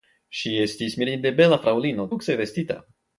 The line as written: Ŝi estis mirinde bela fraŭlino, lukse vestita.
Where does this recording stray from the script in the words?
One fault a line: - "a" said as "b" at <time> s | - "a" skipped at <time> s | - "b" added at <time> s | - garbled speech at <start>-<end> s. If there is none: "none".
none